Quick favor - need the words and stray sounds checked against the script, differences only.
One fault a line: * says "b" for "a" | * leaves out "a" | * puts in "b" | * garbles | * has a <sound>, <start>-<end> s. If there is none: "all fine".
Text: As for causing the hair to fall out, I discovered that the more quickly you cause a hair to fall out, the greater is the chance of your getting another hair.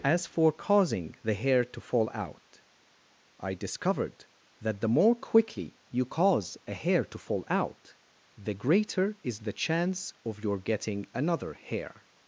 all fine